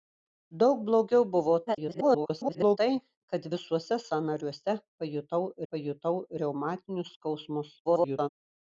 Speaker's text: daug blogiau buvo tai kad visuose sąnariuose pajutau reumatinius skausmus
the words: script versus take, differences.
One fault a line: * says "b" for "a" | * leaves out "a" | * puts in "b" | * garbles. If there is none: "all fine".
* garbles
* puts in "pajutau"
* garbles